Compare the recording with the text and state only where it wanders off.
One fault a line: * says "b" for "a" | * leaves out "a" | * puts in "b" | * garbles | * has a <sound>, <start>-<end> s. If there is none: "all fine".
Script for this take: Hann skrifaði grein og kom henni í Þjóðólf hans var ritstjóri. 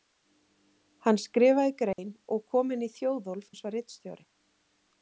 * has a dropout, 1.9-2.0 s